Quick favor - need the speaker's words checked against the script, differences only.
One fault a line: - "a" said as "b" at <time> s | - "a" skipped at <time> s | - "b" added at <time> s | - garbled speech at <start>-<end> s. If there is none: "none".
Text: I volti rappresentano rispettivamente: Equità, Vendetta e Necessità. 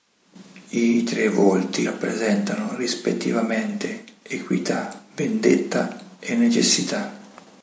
- "tre" added at 1.0 s